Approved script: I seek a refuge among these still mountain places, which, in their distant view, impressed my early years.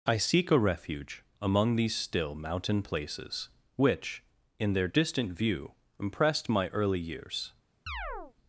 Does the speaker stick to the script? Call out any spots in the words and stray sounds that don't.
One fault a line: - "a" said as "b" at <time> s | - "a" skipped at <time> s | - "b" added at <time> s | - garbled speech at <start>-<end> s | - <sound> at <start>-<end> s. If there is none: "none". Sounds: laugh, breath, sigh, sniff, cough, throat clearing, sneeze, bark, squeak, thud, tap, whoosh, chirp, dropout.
- chirp at 7.9-8.3 s